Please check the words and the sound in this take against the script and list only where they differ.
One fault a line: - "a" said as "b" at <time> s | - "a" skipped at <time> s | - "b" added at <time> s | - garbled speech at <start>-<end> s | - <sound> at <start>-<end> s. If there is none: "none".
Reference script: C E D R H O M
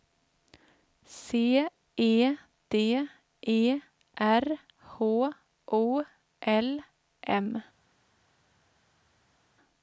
- "E" added at 3.5 s
- "L" added at 6.4 s